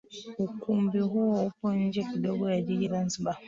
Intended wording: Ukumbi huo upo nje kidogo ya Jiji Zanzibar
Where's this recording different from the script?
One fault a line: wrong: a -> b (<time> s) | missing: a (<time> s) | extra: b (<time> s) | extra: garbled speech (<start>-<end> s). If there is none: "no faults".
no faults